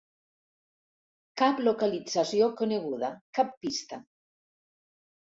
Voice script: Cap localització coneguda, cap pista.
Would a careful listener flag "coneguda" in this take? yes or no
no